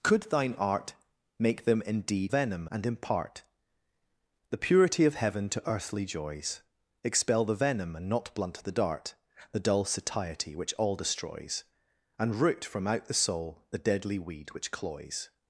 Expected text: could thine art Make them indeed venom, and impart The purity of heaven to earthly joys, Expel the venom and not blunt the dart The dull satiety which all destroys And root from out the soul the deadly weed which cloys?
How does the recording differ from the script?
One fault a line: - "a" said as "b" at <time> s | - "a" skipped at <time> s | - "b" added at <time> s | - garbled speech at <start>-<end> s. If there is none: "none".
none